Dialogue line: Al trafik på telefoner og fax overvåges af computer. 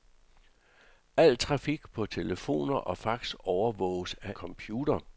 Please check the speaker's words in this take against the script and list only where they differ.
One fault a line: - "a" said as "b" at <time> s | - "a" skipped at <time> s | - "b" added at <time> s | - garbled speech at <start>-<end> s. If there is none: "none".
none